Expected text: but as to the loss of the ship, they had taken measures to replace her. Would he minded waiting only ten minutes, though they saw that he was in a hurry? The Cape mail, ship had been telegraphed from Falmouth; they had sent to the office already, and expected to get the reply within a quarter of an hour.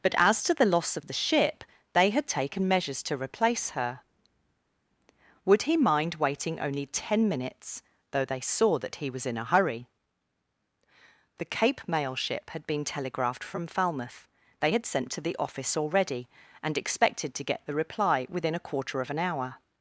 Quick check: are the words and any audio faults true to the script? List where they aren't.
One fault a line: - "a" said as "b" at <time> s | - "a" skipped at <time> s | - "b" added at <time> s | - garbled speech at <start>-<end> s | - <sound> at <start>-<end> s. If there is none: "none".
- "minded" said as "mind" at 5.8 s